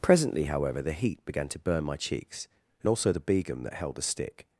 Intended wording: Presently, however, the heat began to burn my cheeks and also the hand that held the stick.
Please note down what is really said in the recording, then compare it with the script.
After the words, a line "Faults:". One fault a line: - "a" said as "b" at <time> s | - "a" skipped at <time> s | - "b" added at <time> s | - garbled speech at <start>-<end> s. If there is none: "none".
Presently, however, the heat began to burn my cheeks and also the begum that held the stick.
Faults:
- "hand" said as "begum" at 3.2 s